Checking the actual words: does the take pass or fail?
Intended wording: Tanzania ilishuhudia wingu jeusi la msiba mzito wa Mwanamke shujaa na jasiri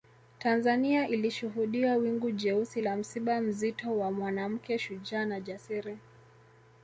pass